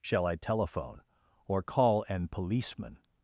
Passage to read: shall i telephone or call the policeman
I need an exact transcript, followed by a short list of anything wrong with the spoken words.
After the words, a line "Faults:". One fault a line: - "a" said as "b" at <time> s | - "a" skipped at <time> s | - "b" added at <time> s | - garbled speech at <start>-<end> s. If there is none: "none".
shall i telephone or call an policeman
Faults:
- "the" said as "an" at 2.1 s